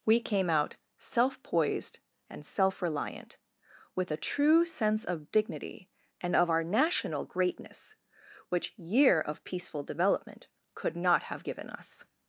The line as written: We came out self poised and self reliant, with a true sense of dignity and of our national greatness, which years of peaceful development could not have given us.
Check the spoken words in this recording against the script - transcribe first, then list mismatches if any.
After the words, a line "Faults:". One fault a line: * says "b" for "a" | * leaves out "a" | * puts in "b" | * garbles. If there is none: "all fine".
We came out self poised and self reliant, with a true sense of dignity and of our national greatness, which year of peaceful development could not have given us.
Faults:
* says "year" for "years"